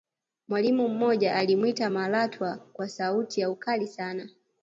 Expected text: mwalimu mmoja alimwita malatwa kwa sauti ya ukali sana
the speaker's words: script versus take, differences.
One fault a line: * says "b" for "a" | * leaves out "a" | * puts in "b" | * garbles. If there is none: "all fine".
all fine